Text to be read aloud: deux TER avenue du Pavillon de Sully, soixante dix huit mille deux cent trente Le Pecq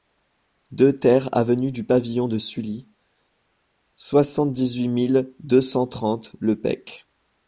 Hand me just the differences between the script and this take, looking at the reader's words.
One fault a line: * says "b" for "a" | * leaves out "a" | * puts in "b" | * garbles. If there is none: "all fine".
all fine